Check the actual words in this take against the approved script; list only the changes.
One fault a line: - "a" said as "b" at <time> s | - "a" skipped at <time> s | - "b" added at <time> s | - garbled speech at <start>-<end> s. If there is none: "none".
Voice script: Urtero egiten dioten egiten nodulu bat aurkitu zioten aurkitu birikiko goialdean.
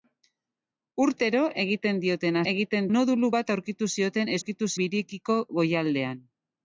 none